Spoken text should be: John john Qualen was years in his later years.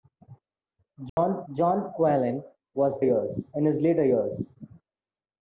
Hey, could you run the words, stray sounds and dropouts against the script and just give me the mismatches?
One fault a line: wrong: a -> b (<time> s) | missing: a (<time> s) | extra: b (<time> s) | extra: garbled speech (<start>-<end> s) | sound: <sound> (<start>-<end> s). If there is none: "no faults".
sound: dropout (1.1-1.2 s)